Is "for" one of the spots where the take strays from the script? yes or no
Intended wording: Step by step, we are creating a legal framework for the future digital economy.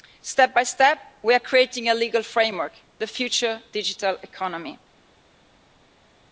yes